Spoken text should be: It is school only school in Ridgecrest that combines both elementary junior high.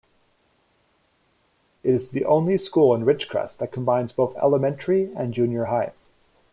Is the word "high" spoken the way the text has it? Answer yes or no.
yes